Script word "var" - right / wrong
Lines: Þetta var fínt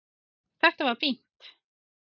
right